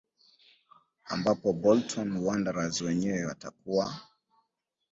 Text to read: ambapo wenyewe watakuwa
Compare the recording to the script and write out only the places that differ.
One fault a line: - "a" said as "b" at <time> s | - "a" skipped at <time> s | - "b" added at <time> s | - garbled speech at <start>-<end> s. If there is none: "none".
- "bolton wanderers" added at 1.5 s